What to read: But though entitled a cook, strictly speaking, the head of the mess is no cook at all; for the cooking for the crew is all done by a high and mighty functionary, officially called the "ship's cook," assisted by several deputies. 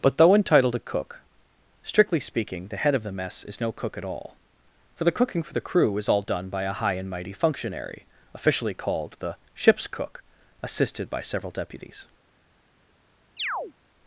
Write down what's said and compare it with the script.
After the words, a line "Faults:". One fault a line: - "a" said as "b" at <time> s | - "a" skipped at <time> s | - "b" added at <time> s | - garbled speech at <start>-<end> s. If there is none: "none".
But though entitled a cook, strictly speaking, the head of the mess is no cook at all; for the cooking for the crew is all done by a high and mighty functionary, officially called the "ship's cook," assisted by several deputies.
Faults:
none